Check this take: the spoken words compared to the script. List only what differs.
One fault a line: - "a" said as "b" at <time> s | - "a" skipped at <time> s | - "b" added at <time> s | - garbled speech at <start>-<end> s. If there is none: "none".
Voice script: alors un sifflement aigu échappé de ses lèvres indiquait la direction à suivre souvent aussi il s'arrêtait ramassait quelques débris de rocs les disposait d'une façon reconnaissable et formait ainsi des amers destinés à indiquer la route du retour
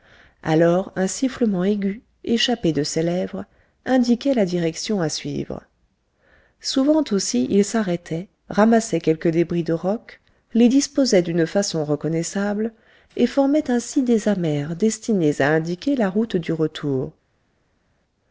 none